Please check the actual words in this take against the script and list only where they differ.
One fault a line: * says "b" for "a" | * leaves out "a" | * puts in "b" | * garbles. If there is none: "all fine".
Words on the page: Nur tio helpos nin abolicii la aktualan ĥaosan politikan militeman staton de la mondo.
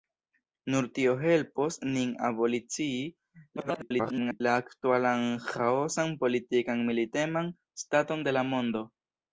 * garbles